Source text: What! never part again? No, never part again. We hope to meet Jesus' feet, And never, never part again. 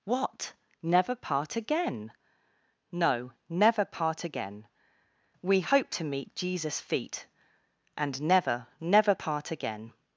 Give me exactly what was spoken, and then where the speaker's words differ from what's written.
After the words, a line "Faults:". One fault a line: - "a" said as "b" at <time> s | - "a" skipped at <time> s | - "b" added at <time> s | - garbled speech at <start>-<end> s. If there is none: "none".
What! never part again? No, never part again. We hope to meet Jesus' feet, And never, never part again.
Faults:
none